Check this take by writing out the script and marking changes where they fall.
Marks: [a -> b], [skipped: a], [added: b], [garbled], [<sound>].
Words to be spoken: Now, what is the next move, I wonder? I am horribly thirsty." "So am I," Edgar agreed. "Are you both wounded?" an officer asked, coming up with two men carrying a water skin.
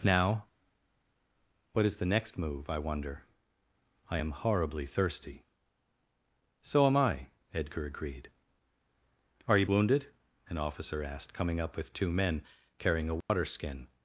Now, what is the next move, I wonder? I am horribly thirsty." "So am I," Edgar agreed. "Are you [skipped: both] wounded?" an officer asked, coming up with two men carrying a water [dropout] skin.